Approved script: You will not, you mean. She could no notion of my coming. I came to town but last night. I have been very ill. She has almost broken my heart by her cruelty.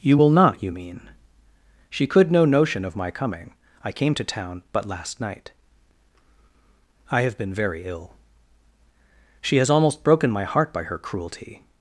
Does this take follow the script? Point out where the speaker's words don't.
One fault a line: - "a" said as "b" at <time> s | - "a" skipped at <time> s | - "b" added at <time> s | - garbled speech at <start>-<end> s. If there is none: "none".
none